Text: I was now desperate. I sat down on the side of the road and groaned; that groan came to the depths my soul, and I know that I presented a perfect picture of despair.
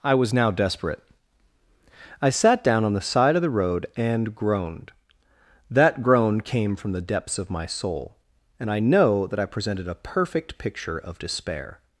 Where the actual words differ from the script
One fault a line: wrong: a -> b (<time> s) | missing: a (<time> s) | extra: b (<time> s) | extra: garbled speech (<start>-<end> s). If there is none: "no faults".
wrong: to -> from (6.8 s)
extra: of (7.4 s)